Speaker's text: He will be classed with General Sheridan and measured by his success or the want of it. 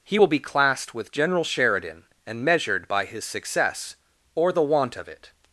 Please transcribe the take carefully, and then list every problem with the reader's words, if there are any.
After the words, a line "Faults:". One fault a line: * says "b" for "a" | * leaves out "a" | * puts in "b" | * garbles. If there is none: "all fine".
He will be classed with General Sheridan and measured by his success or the want of it.
Faults:
all fine